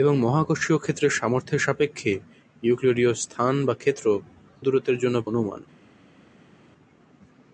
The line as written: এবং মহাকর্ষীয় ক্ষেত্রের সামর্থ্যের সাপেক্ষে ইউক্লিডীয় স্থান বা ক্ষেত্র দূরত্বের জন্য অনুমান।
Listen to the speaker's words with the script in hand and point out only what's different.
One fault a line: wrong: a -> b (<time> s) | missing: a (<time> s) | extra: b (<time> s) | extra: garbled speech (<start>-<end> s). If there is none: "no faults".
no faults